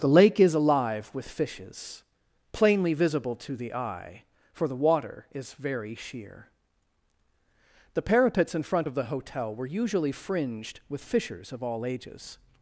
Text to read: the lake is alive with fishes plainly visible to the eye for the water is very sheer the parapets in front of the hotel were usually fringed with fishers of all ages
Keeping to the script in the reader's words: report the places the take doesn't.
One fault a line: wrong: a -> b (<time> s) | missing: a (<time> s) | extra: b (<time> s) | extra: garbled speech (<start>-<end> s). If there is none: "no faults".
no faults